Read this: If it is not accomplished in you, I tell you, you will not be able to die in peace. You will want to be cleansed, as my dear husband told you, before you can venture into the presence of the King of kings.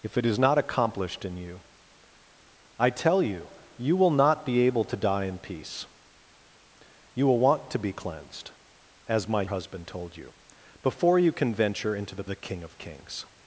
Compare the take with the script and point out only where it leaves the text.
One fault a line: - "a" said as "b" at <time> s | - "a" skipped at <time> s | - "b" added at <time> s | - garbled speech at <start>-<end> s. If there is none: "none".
- "dear" skipped at 9.4 s
- "presence of" skipped at 12.2 s